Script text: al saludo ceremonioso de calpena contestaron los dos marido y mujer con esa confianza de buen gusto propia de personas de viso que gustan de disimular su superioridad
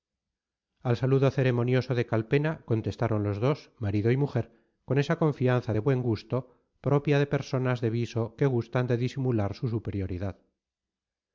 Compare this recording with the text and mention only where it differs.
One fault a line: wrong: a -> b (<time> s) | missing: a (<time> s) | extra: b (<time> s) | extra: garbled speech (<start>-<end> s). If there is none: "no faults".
no faults